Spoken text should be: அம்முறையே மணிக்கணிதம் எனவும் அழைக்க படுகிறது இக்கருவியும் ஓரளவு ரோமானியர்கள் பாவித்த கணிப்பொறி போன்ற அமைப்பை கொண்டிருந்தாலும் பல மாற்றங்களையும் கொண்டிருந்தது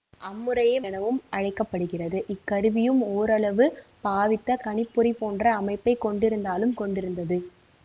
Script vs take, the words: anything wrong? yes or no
yes